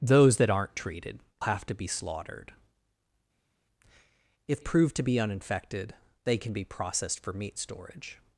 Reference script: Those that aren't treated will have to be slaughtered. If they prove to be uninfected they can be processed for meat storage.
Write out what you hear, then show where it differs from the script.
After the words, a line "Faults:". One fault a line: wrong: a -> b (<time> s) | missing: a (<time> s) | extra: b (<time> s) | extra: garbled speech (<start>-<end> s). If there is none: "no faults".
Those that aren't treated have to be slaughtered. If prove to be uninfected they can be processed for meat storage.
Faults:
missing: will (1.2 s)
missing: they (4.6 s)